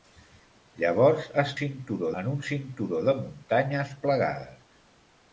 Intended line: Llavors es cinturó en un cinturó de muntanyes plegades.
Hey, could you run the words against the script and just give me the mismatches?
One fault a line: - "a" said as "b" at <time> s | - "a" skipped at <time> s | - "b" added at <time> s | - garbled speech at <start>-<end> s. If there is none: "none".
none